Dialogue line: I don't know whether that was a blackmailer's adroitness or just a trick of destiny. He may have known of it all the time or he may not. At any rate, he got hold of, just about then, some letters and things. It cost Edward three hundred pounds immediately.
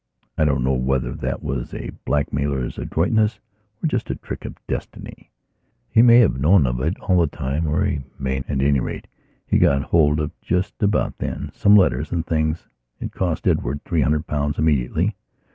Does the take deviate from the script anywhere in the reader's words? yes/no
yes